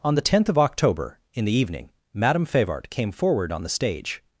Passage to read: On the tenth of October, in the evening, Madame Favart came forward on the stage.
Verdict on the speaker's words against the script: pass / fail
pass